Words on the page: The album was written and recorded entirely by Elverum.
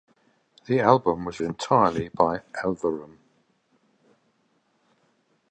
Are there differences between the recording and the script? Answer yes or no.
yes